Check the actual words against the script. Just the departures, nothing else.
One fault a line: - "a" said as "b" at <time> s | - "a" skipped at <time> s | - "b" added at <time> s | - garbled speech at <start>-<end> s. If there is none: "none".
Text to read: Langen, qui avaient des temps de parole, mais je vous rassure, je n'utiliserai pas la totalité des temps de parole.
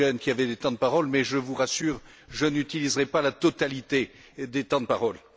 none